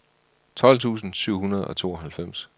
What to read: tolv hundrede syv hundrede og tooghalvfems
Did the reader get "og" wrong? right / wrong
right